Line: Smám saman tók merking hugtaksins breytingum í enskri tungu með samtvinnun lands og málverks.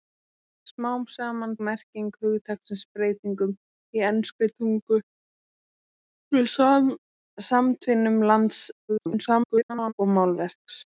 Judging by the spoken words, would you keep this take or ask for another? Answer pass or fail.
fail